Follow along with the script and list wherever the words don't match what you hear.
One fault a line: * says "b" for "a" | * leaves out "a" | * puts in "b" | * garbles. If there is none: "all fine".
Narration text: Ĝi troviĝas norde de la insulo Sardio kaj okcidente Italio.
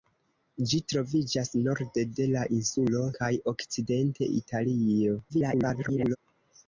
* leaves out "Sardio"
* garbles